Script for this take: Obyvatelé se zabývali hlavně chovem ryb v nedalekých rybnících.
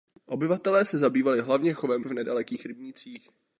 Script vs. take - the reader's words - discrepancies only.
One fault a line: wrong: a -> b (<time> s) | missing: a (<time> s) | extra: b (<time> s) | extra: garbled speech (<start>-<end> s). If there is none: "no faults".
missing: ryb (2.0 s)